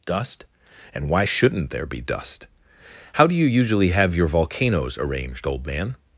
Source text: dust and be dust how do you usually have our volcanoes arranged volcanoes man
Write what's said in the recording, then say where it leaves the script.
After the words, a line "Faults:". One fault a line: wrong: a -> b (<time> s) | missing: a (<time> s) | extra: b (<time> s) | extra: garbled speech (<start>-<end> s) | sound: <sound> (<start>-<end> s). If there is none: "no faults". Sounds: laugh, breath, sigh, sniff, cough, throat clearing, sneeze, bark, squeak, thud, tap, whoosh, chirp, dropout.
dust and why shouldn't there be dust how do you usually have your volcanoes arranged old man
Faults:
extra: why shouldn't there (1.1 s)
wrong: our -> your (4.1 s)
wrong: volcanoes -> old (5.4 s)